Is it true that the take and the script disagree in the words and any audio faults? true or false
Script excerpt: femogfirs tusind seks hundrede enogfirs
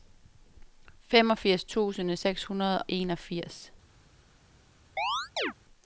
true